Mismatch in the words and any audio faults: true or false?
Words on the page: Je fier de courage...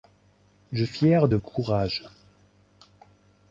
false